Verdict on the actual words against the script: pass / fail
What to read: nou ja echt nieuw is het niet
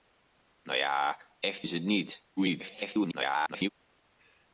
fail